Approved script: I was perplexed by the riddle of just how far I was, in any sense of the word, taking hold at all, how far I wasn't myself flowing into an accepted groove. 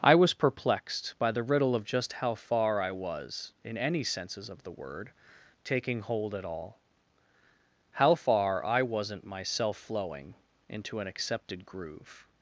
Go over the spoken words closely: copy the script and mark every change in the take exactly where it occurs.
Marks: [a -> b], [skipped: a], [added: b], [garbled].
I was perplexed by the riddle of just how far I was, in any [sense -> senses] of the word, taking hold at all, how far I wasn't myself flowing into an accepted groove.